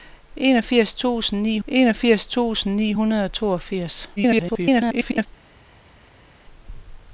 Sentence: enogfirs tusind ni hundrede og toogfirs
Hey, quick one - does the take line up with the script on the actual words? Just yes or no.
no